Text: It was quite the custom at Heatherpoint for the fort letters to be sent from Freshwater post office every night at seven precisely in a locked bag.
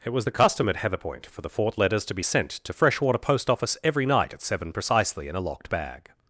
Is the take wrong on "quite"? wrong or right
wrong